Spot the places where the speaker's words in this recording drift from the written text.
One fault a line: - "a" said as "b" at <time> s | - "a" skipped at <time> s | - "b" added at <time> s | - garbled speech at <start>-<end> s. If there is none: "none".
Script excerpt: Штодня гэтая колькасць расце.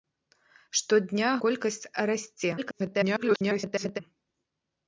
- "гэтая" skipped at 1.3 s
- garbled speech at 2.6-4.0 s